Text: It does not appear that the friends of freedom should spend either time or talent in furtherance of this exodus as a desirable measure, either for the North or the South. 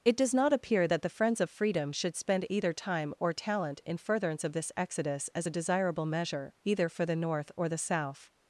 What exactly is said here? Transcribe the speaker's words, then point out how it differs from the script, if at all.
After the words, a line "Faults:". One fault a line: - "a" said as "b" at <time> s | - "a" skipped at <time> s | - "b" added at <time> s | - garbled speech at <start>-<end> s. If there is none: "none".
It does not appear that the friends of freedom should spend either time or talent in furtherance of this exodus as a desirable measure, either for the North or the South.
Faults:
none